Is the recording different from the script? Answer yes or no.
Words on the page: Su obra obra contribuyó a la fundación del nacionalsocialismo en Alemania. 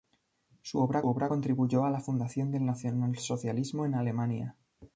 no